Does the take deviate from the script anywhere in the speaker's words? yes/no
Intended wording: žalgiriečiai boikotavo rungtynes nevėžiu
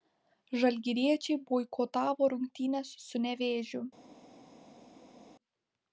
yes